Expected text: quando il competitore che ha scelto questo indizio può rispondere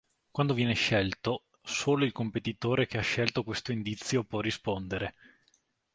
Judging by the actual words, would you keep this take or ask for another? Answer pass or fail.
fail